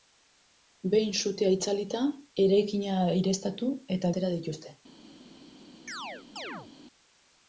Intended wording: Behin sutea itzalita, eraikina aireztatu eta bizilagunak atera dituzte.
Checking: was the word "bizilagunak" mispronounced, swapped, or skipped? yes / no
yes